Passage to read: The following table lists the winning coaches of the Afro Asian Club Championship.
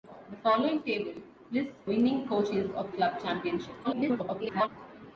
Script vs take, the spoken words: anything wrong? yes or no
yes